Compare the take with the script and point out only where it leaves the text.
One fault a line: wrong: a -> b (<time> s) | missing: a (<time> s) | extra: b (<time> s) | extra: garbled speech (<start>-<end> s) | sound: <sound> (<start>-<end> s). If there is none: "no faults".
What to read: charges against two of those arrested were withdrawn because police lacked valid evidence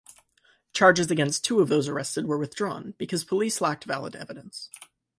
no faults